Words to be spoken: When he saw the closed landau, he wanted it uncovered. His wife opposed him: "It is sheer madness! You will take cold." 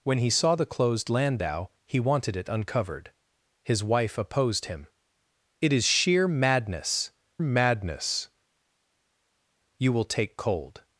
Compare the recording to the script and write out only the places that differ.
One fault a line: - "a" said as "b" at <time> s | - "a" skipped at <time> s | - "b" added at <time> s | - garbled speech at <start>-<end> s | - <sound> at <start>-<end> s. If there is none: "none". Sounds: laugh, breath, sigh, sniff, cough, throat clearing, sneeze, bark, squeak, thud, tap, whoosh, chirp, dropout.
- "madness" added at 7.4 s